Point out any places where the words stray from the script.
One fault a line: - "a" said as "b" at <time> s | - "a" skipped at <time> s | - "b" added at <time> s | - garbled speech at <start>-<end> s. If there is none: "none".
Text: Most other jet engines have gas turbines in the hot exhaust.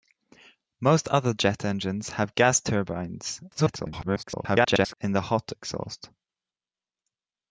- garbled speech at 3.5-5.0 s